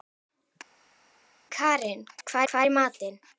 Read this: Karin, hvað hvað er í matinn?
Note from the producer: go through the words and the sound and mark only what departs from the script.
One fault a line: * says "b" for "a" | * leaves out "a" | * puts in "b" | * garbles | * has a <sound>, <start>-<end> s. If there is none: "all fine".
all fine